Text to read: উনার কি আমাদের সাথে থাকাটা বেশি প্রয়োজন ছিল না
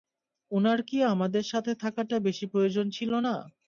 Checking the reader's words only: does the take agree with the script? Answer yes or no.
yes